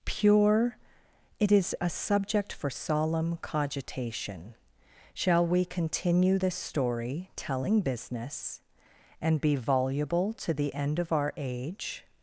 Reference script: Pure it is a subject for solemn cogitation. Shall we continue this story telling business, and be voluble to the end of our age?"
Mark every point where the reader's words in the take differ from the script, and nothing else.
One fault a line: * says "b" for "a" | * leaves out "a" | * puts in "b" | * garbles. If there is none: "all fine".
all fine